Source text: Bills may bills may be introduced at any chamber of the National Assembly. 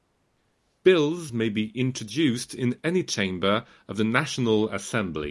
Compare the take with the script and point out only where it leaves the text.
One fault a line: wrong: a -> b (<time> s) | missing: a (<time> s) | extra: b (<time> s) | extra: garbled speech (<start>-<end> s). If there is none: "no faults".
missing: bills may (1.5 s)
wrong: at -> in (2.5 s)